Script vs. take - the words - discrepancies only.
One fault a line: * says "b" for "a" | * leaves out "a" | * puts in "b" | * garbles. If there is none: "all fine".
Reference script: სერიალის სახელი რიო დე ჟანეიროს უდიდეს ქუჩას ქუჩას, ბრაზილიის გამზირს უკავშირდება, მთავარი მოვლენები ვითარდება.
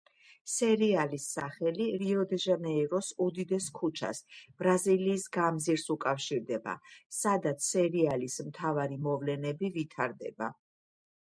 * leaves out "ქუჩას"
* puts in "სადაც სერიალის"